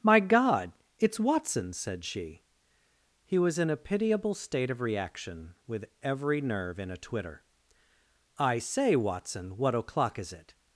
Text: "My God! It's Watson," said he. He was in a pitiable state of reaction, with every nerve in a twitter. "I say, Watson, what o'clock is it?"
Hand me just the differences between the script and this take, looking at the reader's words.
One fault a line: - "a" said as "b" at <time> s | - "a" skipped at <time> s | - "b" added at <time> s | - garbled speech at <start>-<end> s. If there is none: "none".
- "he" said as "she" at 2.0 s